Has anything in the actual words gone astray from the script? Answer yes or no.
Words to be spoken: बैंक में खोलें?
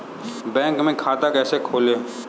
yes